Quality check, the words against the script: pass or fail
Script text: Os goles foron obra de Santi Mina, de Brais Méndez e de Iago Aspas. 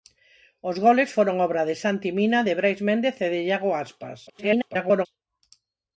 fail